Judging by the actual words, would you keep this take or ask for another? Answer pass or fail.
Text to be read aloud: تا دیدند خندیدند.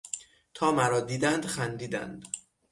fail